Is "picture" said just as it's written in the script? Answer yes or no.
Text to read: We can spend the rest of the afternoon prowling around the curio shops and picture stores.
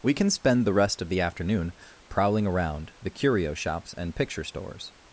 yes